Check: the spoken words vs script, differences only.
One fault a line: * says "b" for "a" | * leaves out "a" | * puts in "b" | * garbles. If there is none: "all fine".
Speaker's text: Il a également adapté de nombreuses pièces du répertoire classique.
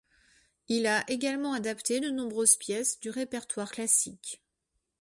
all fine